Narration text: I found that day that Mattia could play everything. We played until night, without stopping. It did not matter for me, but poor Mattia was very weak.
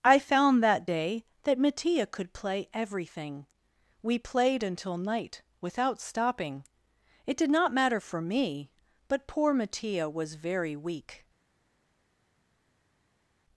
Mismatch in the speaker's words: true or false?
false